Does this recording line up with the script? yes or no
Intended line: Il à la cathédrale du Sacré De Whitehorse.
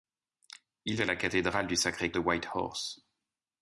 yes